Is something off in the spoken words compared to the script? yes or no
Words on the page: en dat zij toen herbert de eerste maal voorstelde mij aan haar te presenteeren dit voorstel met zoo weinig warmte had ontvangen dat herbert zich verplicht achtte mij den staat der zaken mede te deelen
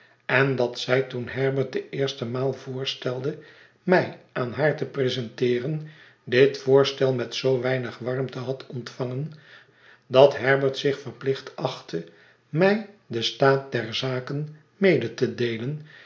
no